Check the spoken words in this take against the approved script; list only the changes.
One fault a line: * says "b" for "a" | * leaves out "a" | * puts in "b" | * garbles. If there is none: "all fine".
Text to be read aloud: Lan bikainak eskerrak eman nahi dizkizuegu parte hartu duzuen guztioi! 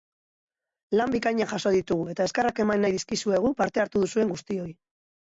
* puts in "jaso ditugu eta"